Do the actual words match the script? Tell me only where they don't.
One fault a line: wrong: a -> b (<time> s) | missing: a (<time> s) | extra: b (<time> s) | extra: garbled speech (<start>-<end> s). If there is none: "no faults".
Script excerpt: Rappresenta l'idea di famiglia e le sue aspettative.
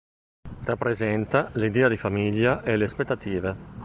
missing: sue (2.9 s)